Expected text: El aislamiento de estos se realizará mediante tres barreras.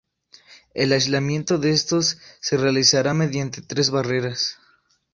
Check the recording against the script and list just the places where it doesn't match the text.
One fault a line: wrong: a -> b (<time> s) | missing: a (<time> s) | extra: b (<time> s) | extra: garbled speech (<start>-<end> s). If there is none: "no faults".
no faults